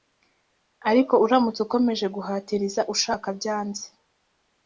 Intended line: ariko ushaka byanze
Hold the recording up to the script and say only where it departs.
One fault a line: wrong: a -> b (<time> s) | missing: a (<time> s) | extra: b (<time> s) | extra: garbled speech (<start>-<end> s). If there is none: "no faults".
extra: uramutse ukomeje guhatiriza (1.2 s)